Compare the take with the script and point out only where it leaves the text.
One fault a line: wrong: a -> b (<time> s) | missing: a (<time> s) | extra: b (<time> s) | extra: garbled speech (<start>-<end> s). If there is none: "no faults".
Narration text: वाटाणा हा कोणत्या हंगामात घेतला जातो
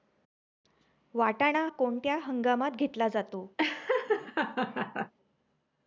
missing: हा (1.6 s)